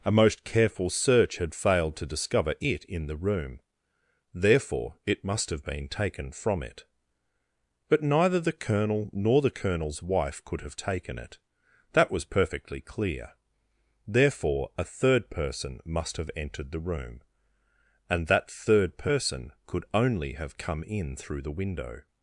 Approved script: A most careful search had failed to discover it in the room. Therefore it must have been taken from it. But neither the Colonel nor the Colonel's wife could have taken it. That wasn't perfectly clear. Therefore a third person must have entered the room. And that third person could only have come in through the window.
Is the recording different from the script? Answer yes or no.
yes